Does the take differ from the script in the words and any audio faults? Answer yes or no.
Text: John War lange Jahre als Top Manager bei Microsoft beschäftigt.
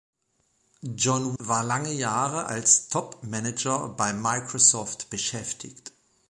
no